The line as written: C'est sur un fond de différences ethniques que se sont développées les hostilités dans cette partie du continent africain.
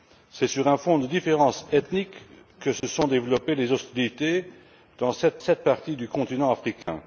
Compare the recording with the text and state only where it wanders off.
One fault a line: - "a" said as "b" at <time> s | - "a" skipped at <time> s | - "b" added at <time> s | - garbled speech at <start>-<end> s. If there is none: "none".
- "cette" added at 5.4 s